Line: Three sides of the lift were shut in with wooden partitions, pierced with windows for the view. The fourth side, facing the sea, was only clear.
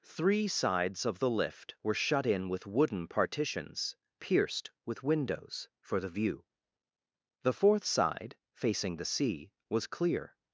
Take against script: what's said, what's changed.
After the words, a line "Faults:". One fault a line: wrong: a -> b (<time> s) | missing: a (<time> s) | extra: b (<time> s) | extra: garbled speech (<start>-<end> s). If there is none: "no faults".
Three sides of the lift were shut in with wooden partitions, pierced with windows for the view. The fourth side, facing the sea, was clear.
Faults:
missing: only (9.9 s)